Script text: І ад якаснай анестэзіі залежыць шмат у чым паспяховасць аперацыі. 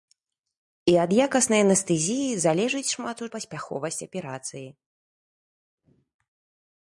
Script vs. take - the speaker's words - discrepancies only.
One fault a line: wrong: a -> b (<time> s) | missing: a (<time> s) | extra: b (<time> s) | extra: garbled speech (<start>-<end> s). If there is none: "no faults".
missing: чым (3.3 s)